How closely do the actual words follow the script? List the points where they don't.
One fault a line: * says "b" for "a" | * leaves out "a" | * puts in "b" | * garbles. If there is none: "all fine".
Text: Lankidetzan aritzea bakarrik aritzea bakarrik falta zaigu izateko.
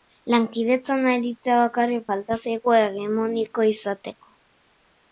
* leaves out "aritzea bakarrik"
* puts in "hegemoniko"